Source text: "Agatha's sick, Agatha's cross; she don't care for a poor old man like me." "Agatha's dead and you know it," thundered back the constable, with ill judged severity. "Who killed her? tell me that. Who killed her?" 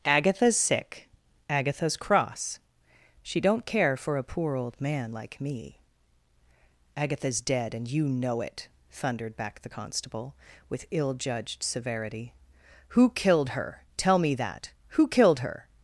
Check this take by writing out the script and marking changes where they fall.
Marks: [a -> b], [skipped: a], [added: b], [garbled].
"Agatha's sick, Agatha's cross; she don't care for a poor old man like me." "Agatha's dead and you know it," thundered back the constable, with ill judged severity. "Who killed her? tell me that. Who killed her?"